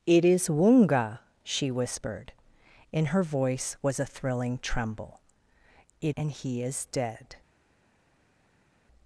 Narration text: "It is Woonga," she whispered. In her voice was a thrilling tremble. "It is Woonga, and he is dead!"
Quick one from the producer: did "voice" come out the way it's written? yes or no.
yes